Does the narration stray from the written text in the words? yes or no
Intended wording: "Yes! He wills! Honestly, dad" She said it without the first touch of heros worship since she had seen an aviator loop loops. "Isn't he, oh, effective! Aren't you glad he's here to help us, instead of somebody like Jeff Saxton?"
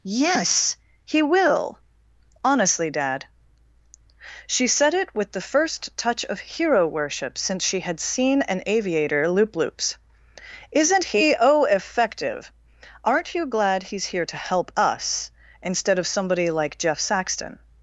yes